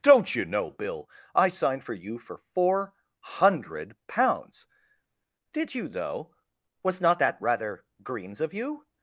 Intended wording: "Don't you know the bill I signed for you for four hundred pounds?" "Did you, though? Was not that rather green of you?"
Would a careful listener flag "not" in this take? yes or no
no